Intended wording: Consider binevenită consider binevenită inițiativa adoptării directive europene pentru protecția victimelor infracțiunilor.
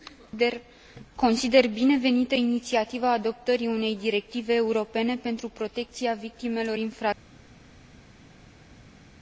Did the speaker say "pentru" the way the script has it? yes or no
yes